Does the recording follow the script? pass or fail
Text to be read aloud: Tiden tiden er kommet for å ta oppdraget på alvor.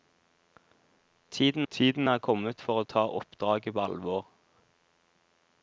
pass